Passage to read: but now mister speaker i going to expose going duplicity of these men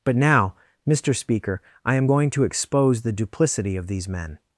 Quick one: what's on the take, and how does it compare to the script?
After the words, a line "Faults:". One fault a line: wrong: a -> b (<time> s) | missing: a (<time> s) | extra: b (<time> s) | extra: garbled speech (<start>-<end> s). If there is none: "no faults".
but now mister speaker i am going to expose the duplicity of these men
Faults:
extra: am (1.9 s)
wrong: going -> the (3.0 s)